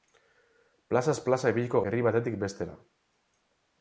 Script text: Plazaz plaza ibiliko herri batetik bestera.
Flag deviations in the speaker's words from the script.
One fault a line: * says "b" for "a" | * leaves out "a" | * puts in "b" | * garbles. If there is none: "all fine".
all fine